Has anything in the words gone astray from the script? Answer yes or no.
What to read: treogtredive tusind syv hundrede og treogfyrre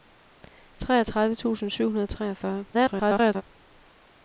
yes